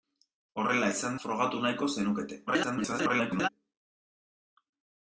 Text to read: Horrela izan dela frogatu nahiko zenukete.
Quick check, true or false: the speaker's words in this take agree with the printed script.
false